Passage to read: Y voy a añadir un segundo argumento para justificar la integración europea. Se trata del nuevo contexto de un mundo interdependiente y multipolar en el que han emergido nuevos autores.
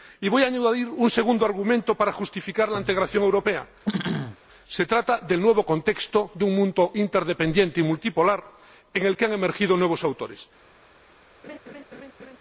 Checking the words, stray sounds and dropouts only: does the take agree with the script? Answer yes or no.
no